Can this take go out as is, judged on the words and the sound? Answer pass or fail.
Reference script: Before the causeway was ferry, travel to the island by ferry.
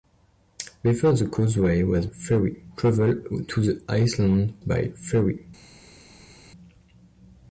pass